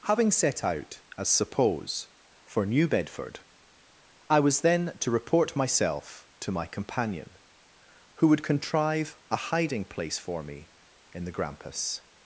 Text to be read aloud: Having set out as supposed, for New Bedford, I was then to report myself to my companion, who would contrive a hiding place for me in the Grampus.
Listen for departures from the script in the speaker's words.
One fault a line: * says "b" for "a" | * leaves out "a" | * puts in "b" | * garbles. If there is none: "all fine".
* says "suppose" for "supposed"